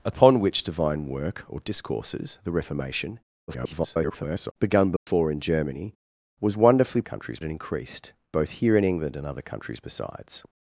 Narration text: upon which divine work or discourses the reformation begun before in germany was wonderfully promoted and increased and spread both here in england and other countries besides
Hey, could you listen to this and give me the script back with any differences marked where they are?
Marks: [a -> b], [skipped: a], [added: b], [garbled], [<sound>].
upon which divine work or discourses the reformation [garbled] begun before [dropout] in germany was wonderfully [promoted -> countries] and increased [skipped: and spread] both here in england and other countries besides